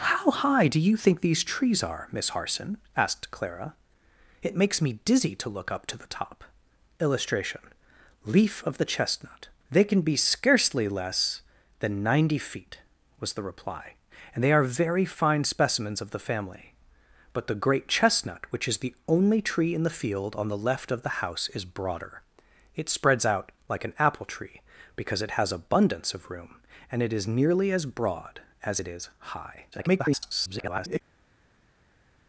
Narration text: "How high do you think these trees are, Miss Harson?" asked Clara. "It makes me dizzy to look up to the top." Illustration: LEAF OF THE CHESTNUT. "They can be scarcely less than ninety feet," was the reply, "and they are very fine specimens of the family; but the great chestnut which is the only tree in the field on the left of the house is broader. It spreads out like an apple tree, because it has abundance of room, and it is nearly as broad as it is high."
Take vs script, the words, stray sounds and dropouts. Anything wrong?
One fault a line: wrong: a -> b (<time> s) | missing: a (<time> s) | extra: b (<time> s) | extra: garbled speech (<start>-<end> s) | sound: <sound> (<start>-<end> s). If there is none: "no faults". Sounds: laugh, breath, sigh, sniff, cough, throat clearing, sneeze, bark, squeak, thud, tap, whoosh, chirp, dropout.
extra: garbled speech (29.7-31.0 s)